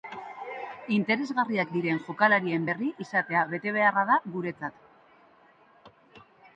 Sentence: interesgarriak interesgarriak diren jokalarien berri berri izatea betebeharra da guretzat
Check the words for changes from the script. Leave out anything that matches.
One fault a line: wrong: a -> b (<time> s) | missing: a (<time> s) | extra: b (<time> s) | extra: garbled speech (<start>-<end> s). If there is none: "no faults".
missing: interesgarriak (1.8 s)
missing: berri (2.9 s)